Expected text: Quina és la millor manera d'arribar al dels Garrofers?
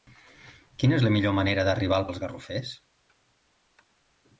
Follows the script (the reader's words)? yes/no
yes